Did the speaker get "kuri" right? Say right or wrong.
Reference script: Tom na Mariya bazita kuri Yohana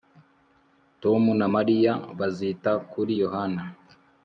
right